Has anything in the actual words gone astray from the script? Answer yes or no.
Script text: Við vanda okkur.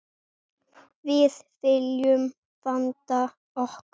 yes